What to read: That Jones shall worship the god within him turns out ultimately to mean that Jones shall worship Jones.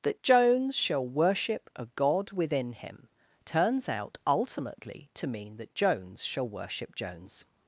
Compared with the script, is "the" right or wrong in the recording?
wrong